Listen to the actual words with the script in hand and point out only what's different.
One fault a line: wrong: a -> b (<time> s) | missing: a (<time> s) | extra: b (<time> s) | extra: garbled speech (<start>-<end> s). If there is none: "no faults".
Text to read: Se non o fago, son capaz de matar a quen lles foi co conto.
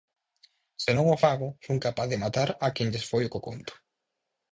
no faults